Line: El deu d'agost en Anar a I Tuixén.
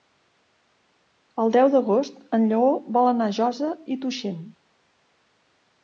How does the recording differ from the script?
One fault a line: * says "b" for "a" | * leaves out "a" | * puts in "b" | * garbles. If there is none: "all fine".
* puts in "Lleó vol"
* puts in "Josa"